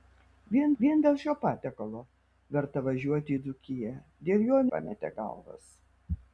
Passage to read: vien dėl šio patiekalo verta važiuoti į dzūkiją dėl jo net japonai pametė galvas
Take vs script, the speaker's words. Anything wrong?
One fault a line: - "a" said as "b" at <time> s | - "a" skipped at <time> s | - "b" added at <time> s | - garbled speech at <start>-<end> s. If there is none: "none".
- "vien" added at 0.8 s
- "net japonai" skipped at 4.6 s